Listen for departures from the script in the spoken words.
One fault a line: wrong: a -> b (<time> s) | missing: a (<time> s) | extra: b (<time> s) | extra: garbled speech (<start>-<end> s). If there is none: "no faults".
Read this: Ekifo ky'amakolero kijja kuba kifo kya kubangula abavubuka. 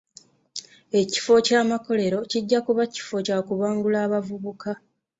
no faults